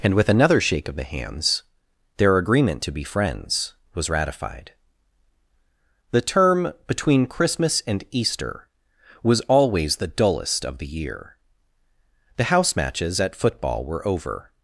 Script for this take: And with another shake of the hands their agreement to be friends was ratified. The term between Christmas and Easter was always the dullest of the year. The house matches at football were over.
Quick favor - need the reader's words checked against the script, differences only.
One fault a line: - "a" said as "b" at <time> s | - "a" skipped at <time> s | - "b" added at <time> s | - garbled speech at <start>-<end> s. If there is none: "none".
none